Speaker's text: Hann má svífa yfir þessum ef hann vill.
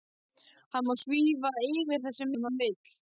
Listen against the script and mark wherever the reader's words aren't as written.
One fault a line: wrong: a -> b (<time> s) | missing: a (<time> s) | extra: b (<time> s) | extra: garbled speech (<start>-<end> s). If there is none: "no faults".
no faults